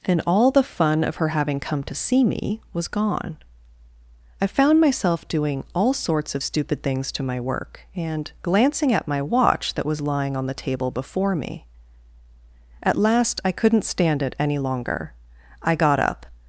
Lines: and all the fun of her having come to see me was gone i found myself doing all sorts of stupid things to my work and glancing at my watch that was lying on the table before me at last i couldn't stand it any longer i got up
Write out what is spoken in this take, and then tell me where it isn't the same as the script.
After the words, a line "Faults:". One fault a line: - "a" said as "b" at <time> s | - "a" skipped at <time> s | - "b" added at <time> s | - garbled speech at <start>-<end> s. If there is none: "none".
and all the fun of her having come to see me was gone i found myself doing all sorts of stupid things to my work and glancing at my watch that was lying on the table before me at last i couldn't stand it any longer i got up
Faults:
none